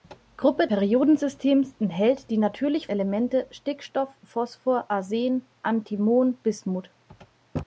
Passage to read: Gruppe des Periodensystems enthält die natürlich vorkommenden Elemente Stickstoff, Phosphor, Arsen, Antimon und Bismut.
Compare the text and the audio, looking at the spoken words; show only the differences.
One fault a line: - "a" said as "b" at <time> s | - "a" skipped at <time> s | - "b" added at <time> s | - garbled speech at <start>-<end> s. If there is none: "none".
- "des" skipped at 0.7 s
- "vorkommenden" skipped at 2.9 s
- "und" skipped at 6.4 s